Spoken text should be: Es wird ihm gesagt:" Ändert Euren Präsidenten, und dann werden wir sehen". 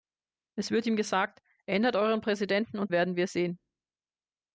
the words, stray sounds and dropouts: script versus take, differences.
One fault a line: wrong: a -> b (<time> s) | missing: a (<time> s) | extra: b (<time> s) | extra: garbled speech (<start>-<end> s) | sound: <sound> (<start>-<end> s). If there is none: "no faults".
missing: dann (2.9 s)